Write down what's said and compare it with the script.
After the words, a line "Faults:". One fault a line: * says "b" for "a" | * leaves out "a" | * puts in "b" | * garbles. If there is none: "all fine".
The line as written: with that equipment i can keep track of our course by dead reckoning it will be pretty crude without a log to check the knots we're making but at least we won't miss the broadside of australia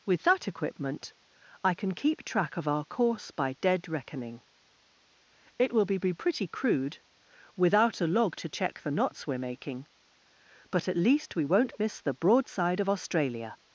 with that equipment i can keep track of our course by dead reckoning it will be be pretty crude without a log to check the knots we're making but at least we won't miss the broadside of australia
Faults:
* puts in "be"